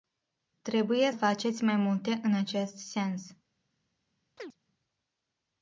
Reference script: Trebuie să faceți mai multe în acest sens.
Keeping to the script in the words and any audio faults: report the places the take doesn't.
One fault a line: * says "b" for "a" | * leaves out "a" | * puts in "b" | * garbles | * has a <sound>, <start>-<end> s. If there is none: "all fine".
* leaves out "să"
* has a chirp, 4.4-4.6 s